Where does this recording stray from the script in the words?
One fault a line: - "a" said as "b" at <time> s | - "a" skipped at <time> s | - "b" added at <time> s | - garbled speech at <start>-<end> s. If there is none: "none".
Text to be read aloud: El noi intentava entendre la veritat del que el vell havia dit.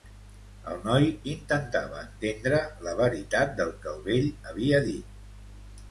none